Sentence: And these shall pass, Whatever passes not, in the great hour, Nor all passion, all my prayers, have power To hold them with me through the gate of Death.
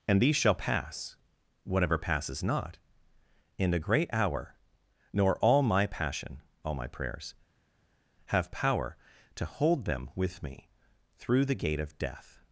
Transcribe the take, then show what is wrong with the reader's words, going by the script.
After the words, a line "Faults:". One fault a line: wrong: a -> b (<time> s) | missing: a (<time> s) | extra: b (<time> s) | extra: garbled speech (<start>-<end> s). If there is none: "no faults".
And these shall pass, Whatever passes not, in the great hour, Nor all my passion, all my prayers, have power To hold them with me through the gate of Death.
Faults:
extra: my (5.6 s)